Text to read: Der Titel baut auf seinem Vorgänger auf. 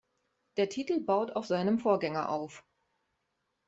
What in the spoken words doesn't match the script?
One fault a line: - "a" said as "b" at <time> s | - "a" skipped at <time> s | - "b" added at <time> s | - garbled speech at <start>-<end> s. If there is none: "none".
none